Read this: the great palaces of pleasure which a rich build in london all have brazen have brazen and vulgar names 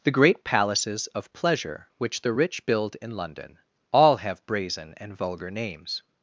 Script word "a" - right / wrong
wrong